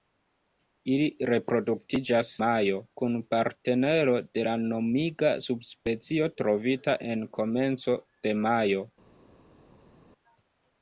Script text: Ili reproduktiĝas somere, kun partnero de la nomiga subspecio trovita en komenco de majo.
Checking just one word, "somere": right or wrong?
wrong